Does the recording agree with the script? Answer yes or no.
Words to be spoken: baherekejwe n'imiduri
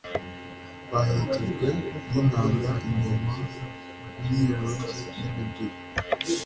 no